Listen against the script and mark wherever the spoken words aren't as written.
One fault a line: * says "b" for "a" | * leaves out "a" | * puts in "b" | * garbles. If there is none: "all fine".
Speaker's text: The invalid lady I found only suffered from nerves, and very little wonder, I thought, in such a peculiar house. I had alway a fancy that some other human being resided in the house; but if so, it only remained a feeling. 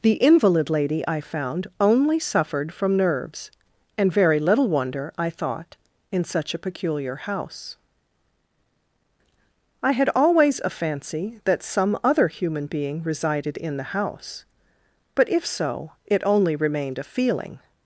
* says "always" for "alway"